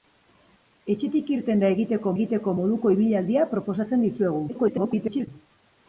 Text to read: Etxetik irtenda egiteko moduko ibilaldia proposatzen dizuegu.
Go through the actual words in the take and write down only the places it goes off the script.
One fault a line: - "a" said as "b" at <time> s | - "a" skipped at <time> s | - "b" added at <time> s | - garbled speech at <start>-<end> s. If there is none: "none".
- "egiteko" added at 2.2 s
- garbled speech at 4.5-5.3 s